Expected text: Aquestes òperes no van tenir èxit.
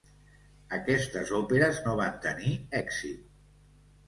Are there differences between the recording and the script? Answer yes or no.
no